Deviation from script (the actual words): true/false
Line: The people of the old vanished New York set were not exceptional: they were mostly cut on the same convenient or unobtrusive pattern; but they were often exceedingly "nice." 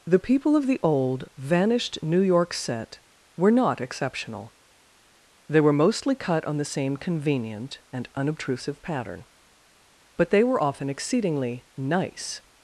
true